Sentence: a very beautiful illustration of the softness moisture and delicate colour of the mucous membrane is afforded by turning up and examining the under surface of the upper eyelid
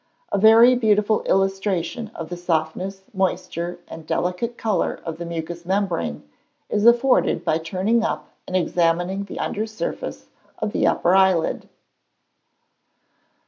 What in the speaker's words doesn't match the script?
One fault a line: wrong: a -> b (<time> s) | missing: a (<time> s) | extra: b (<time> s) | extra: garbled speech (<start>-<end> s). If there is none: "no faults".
no faults